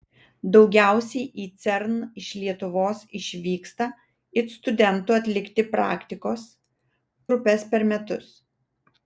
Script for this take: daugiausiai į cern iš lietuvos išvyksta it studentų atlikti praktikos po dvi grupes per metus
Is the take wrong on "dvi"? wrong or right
wrong